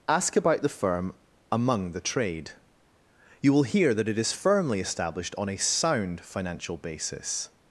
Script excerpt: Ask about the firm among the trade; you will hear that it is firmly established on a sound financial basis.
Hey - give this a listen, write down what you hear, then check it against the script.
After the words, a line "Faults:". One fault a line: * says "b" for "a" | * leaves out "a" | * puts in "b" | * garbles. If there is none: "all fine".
Ask about the firm among the trade; you will hear that it is firmly established on a sound financial basis.
Faults:
all fine